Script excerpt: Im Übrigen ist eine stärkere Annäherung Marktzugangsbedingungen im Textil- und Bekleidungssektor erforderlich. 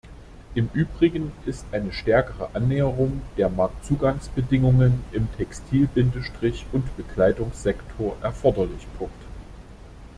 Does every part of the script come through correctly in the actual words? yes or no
no